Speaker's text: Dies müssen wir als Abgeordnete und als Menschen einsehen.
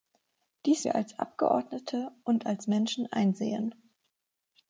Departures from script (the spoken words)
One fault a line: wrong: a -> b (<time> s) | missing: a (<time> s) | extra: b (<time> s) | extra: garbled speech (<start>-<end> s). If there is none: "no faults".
missing: müssen (0.9 s)